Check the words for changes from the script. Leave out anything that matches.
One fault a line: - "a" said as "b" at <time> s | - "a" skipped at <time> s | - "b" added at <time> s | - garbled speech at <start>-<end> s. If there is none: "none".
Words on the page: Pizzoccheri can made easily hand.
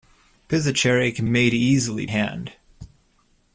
none